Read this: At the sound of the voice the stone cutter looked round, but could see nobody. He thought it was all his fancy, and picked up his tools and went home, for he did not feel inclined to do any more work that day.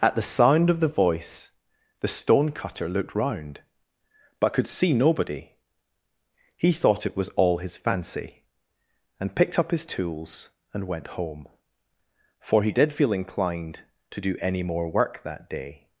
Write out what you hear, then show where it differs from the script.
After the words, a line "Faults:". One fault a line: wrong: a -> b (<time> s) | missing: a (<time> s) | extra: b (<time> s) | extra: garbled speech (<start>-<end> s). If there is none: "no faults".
At the sound of the voice the stone cutter looked round, but could see nobody. He thought it was all his fancy, and picked up his tools and went home, for he did feel inclined to do any more work that day.
Faults:
missing: not (12.9 s)